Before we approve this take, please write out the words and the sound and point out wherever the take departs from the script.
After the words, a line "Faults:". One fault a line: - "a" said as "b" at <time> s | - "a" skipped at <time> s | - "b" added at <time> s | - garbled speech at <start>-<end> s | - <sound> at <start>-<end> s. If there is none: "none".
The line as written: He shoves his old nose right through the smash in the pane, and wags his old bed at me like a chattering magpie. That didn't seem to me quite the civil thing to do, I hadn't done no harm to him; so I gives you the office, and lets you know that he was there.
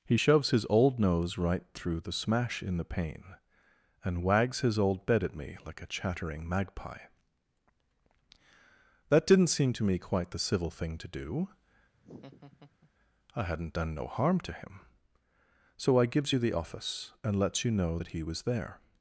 He shoves his old nose right through the smash in the pane, and wags his old bed at me like a chattering magpie. That didn't seem to me quite the civil thing to do, I hadn't done no harm to him; so I gives you the office, and lets you know that he was there.
Faults:
- laugh at 11.9-12.9 s